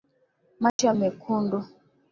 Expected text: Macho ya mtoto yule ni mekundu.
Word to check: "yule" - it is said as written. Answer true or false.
false